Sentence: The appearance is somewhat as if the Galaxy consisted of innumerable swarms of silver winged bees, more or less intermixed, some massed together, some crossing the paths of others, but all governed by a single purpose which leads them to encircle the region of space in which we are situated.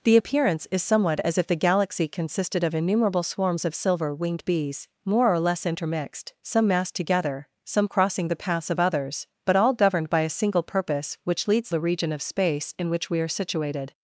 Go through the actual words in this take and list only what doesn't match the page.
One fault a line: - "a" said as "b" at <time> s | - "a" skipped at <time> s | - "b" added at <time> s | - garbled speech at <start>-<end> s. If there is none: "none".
- "them to encircle" skipped at 11.7 s